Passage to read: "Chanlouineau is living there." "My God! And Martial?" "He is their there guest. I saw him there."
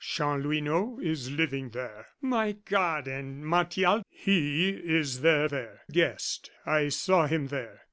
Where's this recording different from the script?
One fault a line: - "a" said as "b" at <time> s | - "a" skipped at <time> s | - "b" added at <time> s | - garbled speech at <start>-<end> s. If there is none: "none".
none